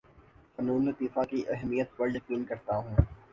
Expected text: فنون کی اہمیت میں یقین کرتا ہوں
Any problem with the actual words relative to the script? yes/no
yes